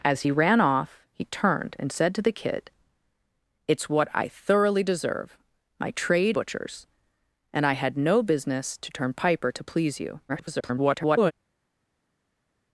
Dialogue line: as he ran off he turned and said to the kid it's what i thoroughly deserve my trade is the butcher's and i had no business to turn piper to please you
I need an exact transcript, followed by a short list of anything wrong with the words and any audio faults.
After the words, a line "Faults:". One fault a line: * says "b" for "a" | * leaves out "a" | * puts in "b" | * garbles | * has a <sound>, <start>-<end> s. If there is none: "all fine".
as he ran off he turned and said to the kid it's what i thoroughly deserve my trade butcher's and i had no business to turn piper to please you [garbled]
Faults:
* leaves out "is the"
* garbles